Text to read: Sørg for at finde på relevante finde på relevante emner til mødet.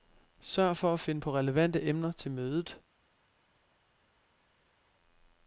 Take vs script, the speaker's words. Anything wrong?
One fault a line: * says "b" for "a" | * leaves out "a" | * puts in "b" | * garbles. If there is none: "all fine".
* leaves out "finde på relevante"